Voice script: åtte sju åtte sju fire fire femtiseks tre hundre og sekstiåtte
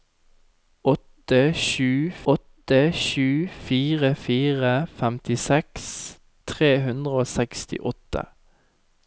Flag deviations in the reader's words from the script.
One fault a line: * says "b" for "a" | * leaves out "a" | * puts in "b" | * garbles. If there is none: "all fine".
all fine